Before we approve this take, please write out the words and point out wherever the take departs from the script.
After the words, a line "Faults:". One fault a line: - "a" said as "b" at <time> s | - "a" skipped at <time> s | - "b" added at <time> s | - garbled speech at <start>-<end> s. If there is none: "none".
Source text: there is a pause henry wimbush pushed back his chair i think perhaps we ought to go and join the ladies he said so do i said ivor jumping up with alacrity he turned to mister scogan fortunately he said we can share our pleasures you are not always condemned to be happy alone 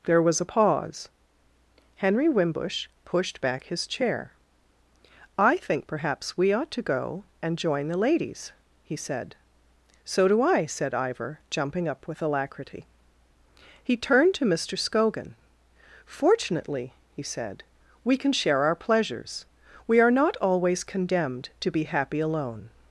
there was a pause henry wimbush pushed back his chair i think perhaps we ought to go and join the ladies he said so do i said ivor jumping up with alacrity he turned to mister scogan fortunately he said we can share our pleasures we are not always condemned to be happy alone
Faults:
- "is" said as "was" at 0.2 s
- "you" said as "we" at 19.9 s